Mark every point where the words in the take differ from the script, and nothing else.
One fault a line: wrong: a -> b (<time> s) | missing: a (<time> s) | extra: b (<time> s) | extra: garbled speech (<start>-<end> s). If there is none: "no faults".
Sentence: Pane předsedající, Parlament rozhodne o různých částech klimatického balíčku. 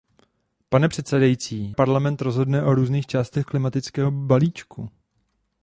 no faults